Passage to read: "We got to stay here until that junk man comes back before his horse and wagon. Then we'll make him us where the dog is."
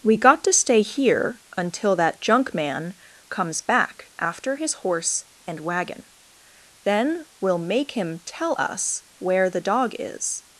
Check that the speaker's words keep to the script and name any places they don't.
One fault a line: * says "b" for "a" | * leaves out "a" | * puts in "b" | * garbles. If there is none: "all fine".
* says "after" for "before"
* puts in "tell"